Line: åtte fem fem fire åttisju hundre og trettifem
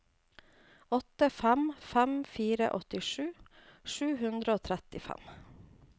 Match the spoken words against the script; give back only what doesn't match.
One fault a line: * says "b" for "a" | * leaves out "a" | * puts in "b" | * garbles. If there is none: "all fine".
* puts in "sju"